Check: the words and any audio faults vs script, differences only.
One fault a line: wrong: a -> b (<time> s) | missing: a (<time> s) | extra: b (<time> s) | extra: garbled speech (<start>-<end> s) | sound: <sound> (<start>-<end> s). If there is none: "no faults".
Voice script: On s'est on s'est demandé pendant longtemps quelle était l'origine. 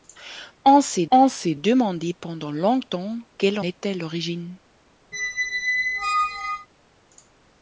sound: squeak (5.1-6.7 s)